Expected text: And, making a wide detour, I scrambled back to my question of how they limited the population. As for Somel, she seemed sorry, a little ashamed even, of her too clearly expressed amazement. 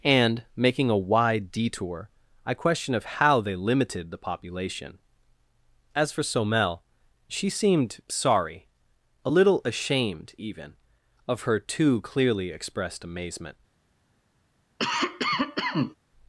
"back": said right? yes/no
no